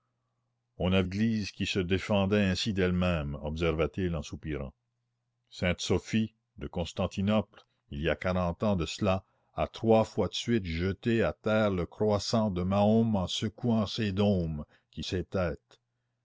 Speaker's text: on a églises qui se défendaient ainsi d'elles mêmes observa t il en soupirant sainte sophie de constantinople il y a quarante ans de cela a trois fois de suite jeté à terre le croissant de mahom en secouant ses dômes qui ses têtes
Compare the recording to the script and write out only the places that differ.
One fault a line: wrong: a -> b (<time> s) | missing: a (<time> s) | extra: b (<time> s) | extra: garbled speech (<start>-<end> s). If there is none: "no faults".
no faults